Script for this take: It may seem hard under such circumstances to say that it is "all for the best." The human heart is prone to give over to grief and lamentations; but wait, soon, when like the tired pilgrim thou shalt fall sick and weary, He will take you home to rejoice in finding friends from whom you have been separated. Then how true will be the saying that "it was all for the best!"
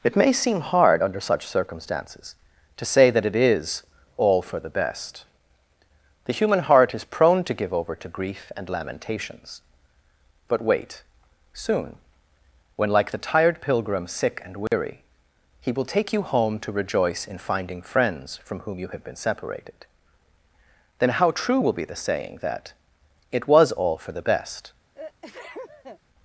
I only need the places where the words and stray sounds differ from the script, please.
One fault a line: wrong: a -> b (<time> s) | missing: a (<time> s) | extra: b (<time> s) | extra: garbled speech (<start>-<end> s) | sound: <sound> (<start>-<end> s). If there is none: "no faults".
missing: thou shalt fall (14.1 s)
sound: dropout (14.7-14.7 s)
sound: sneeze (24.9-26.0 s)